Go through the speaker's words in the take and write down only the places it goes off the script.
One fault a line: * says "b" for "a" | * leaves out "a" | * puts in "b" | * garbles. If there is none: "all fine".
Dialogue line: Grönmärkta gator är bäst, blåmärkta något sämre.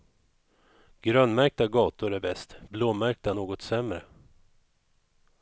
all fine